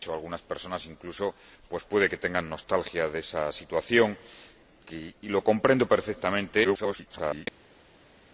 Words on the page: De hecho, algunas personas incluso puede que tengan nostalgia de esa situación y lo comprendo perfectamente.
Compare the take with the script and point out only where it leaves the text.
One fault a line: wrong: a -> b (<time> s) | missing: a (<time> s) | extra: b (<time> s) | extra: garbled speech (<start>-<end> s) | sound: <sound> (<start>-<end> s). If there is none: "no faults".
extra: garbled speech (6.6-7.5 s)